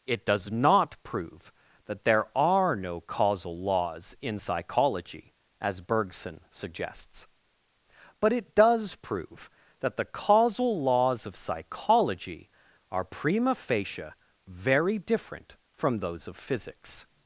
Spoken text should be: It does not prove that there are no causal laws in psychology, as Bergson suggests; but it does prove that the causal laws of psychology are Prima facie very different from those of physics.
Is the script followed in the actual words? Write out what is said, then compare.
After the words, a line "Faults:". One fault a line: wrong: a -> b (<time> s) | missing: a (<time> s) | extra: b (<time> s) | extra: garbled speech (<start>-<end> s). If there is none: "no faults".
It does not prove that there are no causal laws in psychology, as Bergson suggests; but it does prove that the causal laws of psychology are Prima facie very different from those of physics.
Faults:
no faults